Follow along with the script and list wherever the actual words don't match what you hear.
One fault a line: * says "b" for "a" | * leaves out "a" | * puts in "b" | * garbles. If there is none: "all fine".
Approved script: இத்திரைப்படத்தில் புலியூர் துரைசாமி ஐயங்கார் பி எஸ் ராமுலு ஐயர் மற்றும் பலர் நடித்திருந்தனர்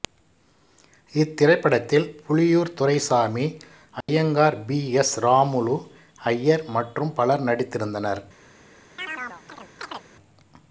all fine